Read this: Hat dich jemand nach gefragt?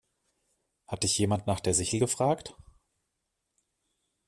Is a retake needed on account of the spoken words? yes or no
yes